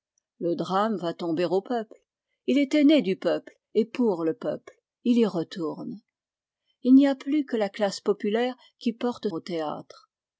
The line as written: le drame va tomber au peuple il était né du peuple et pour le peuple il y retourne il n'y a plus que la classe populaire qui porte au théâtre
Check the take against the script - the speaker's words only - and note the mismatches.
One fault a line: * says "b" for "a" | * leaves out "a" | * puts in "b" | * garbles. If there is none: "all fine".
all fine